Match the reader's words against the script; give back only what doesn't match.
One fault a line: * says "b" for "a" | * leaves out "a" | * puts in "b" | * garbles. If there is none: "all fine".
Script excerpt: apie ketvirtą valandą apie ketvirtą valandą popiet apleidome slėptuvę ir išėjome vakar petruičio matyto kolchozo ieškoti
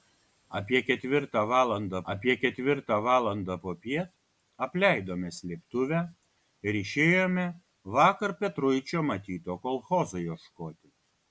all fine